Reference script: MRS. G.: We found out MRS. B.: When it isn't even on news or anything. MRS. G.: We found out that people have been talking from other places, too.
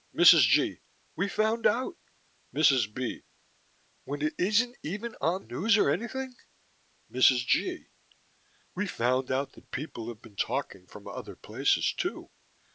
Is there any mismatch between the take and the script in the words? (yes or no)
no